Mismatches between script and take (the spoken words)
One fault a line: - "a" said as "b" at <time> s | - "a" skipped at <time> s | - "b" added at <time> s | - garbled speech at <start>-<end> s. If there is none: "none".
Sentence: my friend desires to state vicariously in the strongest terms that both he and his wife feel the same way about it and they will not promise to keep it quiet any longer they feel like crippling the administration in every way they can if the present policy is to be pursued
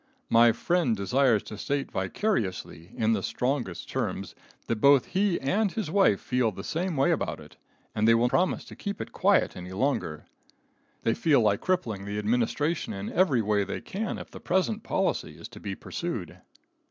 - "not" skipped at 8.3 s